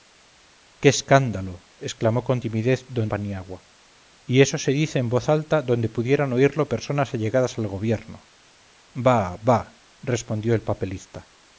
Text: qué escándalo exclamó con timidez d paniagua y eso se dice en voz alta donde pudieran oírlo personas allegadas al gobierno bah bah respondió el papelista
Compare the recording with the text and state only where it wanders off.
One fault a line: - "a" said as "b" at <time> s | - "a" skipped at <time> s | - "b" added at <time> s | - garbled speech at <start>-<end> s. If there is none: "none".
none